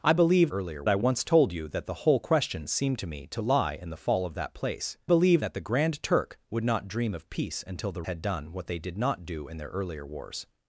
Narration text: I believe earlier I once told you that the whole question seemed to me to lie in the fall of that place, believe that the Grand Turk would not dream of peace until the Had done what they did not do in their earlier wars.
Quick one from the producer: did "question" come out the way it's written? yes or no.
yes